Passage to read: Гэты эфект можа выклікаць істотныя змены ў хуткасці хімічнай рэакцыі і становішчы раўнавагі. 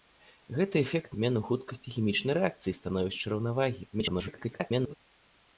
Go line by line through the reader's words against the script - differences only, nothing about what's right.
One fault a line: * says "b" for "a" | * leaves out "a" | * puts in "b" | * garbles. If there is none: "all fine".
* leaves out "можа выклікаць істотныя"
* garbles